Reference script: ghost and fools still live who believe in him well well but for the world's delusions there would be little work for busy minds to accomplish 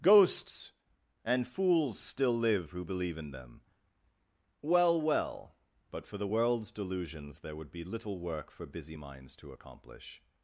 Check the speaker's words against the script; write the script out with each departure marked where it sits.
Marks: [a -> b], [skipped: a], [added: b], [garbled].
[ghost -> ghosts] and fools still live who believe in [him -> them] well well but for the world's delusions there would be little work for busy minds to accomplish